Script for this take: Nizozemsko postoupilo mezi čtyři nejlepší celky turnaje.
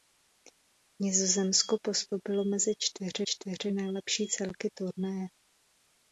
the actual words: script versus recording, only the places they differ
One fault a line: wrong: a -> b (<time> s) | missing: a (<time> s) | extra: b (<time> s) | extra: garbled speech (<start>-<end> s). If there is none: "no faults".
extra: čtyři (3.2 s)